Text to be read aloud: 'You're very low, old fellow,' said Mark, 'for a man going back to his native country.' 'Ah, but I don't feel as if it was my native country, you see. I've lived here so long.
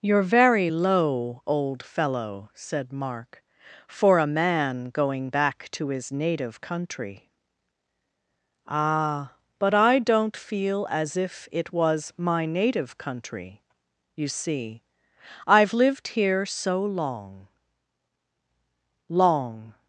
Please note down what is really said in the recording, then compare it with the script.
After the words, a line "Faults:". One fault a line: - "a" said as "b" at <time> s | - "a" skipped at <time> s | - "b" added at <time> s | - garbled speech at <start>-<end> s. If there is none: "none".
'You're very low, old fellow,' said Mark, 'for a man going back to his native country.' 'Ah, but I don't feel as if it was my native country, you see. I've lived here so long long.
Faults:
- "long" added at 19.1 s